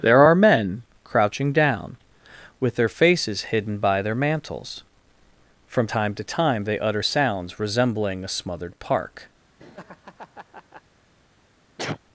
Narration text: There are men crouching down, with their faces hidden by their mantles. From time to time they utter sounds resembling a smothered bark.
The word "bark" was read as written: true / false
false